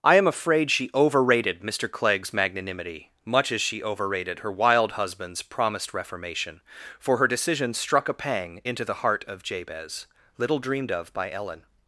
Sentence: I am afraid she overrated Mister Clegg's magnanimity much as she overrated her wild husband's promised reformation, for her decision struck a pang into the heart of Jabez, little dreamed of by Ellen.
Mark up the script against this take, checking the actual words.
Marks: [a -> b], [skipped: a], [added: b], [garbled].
I am afraid she overrated Mister Clegg's magnanimity much as she overrated her wild husband's promised reformation, for her decision struck a pang into the heart of Jabez, little dreamed of by Ellen.